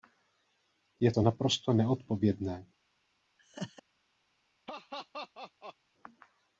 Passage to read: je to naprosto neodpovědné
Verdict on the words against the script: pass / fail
pass